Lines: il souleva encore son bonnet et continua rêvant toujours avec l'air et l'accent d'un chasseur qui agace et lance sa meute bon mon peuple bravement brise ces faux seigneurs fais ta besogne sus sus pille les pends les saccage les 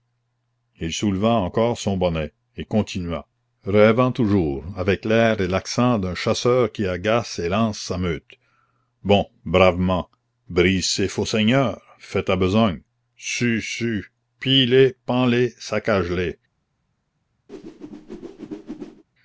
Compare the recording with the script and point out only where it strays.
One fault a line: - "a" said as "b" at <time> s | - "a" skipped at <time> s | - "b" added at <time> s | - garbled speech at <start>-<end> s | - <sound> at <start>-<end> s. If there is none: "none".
- "mon peuple" skipped at 9.3 s
- whoosh at 17.5-19.0 s